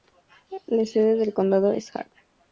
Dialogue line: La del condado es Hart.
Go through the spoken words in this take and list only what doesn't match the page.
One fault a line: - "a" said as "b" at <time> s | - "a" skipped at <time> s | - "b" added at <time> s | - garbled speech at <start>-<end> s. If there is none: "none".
- "sede" added at 0.9 s